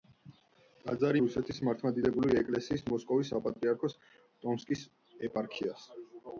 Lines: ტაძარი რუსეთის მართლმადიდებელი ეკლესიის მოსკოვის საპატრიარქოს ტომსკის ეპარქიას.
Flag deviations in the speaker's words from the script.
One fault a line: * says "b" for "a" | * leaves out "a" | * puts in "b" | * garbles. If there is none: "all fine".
all fine